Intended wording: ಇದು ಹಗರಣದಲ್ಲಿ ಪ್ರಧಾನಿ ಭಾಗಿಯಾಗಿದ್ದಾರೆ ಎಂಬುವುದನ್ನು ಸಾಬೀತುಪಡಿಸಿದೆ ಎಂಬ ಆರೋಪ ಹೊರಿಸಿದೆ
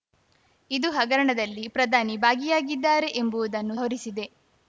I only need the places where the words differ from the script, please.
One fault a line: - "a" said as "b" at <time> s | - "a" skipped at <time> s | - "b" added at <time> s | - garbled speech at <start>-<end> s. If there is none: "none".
- "ಸಾಬೀತುಪಡಿಸಿದೆ ಎಂಬ ಆರೋಪ" skipped at 3.8 s